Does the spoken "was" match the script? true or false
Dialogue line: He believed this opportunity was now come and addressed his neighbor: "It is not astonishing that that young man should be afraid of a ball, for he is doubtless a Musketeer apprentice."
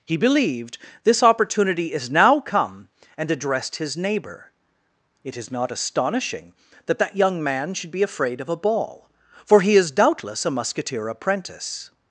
false